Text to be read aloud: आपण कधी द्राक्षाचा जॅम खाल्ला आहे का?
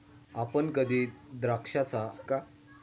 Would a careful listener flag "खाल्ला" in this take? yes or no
yes